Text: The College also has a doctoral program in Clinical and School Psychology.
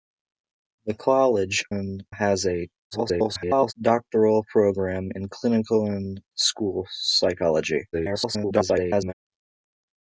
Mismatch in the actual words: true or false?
true